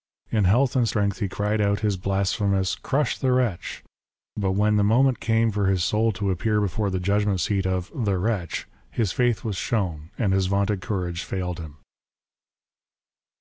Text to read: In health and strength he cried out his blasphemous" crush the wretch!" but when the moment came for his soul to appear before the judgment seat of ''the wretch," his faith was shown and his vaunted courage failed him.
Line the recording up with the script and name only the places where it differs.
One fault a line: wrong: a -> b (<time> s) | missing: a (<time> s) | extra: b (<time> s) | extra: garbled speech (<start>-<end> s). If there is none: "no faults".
no faults